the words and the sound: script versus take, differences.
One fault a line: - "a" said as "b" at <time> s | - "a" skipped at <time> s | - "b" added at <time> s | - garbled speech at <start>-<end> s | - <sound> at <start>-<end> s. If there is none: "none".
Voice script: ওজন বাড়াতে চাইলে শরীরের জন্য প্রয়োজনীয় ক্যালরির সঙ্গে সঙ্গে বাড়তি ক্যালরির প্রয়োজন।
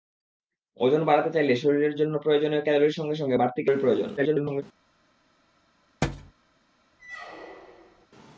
- garbled speech at 4.2-4.6 s
- thud at 6.0-6.3 s
- squeak at 7.0-8.1 s